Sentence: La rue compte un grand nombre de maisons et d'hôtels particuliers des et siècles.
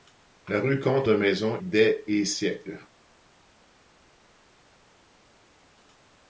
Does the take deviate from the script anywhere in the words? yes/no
yes